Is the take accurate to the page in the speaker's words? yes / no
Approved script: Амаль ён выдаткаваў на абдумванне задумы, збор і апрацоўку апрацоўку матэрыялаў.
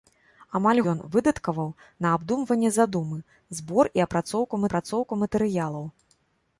yes